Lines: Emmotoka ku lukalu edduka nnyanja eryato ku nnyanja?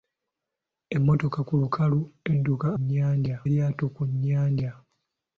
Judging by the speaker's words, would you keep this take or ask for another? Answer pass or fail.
pass